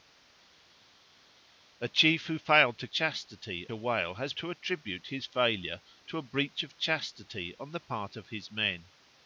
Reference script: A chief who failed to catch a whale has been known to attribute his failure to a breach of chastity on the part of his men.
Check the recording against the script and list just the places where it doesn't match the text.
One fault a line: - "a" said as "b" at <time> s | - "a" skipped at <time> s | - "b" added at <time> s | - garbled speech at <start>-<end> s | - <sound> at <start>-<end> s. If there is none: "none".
- "catch" said as "chastity" at 2.9 s
- "been known" skipped at 4.3 s